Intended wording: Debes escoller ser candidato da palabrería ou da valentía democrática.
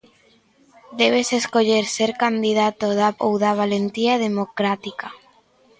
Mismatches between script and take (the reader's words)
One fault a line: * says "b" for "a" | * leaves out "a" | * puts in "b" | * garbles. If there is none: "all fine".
* leaves out "palabrería"